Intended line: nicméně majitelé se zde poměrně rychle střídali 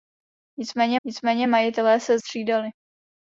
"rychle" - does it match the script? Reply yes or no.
no